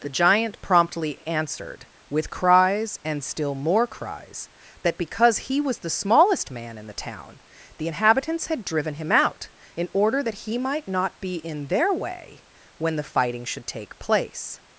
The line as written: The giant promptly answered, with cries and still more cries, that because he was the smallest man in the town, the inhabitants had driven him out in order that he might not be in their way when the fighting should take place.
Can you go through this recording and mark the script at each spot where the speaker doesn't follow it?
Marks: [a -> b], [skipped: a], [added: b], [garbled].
The giant promptly answered, with cries and still more cries, that because he was the smallest man in the town, the inhabitants had driven him out in order that he might not be in their way when the fighting should take place.